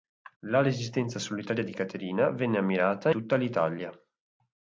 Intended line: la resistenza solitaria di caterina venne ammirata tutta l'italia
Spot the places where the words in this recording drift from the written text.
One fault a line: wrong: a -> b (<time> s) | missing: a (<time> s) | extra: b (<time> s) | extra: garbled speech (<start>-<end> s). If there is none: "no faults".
no faults